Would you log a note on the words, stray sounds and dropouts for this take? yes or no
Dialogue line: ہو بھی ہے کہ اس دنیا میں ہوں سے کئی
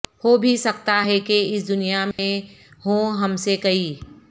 yes